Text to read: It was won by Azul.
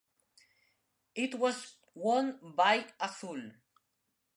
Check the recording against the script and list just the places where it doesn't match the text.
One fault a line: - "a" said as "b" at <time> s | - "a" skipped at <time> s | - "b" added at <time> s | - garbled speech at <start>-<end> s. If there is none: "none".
none